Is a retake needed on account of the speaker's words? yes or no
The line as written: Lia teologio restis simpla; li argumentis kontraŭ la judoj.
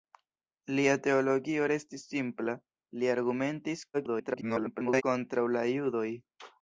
yes